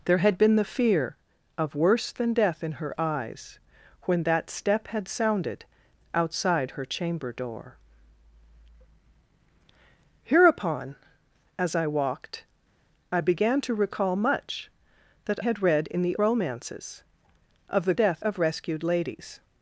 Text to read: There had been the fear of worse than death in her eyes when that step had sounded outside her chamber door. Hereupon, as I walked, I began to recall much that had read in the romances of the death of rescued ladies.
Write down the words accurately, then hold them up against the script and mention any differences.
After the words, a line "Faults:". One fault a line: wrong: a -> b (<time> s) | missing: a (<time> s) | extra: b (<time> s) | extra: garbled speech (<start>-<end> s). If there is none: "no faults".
There had been the fear of worse than death in her eyes when that step had sounded outside her chamber door. Hereupon, as I walked, I began to recall much that had read in the romances of the death of rescued ladies.
Faults:
no faults